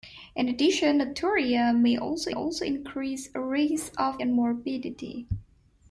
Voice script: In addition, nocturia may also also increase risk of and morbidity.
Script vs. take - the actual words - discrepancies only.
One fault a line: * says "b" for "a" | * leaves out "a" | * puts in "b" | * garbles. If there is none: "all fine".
all fine